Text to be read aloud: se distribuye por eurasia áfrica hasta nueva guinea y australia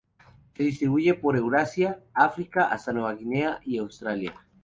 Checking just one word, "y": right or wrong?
right